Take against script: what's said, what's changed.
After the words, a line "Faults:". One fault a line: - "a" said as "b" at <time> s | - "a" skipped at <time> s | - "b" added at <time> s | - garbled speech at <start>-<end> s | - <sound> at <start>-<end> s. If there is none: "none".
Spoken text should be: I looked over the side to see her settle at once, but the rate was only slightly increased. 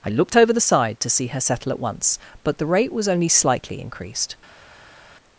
I looked over the side to see her settle at once, but the rate was only slightly increased.
Faults:
none